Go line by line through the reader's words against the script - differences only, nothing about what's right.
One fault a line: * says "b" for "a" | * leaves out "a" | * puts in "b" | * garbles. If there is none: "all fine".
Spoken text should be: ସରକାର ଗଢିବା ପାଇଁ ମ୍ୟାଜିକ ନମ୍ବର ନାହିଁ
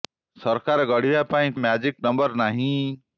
all fine